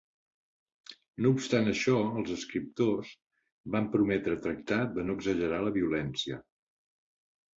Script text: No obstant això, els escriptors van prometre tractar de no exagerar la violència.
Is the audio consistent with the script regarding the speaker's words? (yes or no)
yes